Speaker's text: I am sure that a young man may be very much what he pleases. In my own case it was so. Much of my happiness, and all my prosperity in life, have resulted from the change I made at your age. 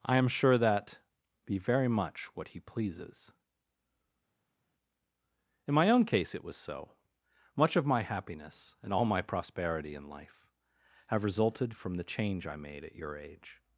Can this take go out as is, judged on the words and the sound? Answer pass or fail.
fail